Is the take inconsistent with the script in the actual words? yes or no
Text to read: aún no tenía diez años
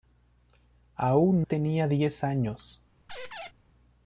yes